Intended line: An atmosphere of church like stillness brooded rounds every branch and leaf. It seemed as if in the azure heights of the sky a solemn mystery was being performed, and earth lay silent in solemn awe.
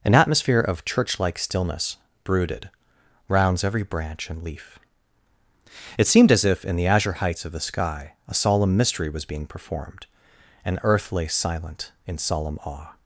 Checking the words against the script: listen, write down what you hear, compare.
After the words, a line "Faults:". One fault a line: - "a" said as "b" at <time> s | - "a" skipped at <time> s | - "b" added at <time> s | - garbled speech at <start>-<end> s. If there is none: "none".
An atmosphere of church like stillness brooded rounds every branch and leaf. It seemed as if in the azure heights of the sky a solemn mystery was being performed, and earth lay silent in solemn awe.
Faults:
none